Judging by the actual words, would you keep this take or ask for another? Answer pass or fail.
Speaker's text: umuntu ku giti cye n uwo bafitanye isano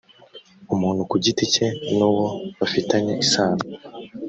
pass